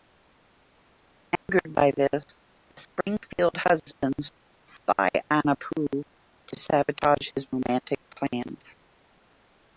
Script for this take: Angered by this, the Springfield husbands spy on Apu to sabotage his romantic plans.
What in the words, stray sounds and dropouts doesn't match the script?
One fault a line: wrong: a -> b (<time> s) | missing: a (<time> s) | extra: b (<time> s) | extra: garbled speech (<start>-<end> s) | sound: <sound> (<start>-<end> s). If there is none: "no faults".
sound: dropout (1.4-1.5 s)